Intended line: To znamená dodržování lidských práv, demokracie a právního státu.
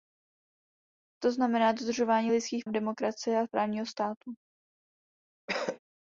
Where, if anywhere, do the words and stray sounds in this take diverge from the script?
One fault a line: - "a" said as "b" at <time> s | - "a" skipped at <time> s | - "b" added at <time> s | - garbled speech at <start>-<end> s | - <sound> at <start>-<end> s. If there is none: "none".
- "práv" skipped at 2.7 s
- cough at 5.5-5.8 s